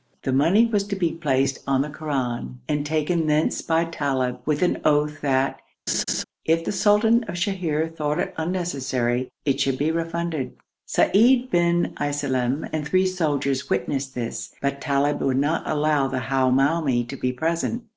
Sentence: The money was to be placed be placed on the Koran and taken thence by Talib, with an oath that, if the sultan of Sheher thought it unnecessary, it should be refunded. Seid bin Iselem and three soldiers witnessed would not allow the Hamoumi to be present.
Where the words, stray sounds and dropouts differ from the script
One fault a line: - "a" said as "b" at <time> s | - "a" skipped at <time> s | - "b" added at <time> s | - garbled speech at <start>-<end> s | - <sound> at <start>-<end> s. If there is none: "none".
- "be placed" skipped at 1.6 s
- laugh at 5.9-6.2 s
- "this but Talib" added at 14.1 s